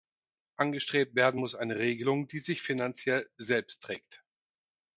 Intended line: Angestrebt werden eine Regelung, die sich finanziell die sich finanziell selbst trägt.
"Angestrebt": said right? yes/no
yes